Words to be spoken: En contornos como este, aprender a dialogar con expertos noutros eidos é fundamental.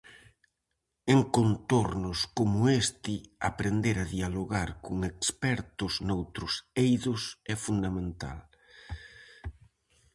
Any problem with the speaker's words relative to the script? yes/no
no